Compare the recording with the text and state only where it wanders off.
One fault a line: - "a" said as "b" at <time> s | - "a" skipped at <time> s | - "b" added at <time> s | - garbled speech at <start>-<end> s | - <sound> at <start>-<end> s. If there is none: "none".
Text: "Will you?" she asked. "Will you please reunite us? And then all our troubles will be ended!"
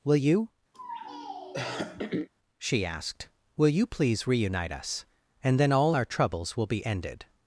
- throat clearing at 0.7-2.3 s